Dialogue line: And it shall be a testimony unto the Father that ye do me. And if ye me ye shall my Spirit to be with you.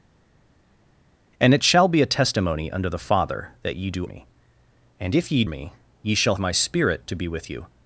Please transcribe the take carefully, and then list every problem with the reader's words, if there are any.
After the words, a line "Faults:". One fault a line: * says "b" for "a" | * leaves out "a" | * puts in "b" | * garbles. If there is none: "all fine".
And it shall be a testimony unto the Father that ye do me. And if ye me ye shall my Spirit to be with you.
Faults:
all fine